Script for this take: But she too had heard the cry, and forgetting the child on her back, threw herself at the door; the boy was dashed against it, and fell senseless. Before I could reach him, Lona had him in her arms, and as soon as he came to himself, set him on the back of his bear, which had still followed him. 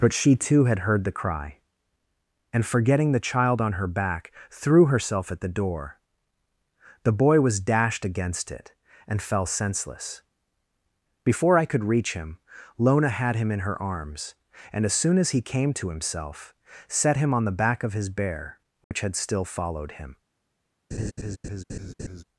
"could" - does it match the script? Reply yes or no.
yes